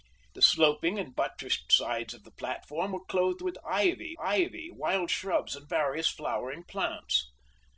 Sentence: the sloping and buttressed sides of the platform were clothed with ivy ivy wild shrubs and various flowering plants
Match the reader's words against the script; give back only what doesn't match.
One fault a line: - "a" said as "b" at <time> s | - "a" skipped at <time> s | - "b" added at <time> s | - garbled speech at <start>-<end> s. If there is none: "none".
none